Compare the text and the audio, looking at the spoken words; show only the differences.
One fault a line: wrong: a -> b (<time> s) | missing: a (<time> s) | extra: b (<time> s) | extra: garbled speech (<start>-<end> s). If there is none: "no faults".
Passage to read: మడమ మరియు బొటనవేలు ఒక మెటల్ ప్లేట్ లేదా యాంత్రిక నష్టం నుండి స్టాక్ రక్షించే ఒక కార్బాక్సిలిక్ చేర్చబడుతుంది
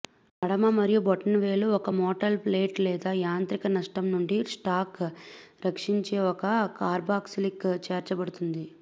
no faults